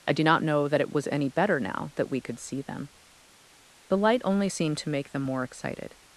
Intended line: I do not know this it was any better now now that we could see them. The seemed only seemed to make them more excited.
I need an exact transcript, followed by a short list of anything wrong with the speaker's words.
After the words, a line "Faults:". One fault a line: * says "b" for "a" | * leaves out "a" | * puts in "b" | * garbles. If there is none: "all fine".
I do not know that it was any better now that we could see them. The light only seemed to make them more excited.
Faults:
* says "that" for "this"
* leaves out "now"
* says "light" for "seemed"